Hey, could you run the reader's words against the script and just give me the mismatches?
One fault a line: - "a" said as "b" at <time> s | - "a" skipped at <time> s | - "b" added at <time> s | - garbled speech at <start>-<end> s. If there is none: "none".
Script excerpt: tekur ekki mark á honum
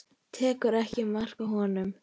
none